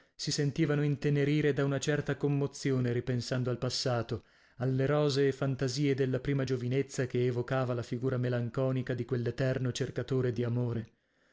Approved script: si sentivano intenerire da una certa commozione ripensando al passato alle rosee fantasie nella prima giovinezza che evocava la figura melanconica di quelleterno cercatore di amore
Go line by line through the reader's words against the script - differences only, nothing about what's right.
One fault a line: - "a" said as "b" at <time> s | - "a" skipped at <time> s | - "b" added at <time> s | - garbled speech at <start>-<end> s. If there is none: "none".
- "nella" said as "della" at 6.0 s